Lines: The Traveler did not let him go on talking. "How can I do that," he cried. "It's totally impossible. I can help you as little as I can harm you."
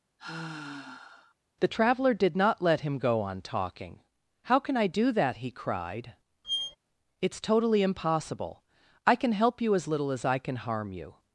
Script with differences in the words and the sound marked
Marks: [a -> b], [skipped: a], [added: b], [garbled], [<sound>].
[sigh] The Traveler did not let him go on talking. "How can I do that," he cried. [squeak] "It's totally impossible. I can help you as little as I can harm you."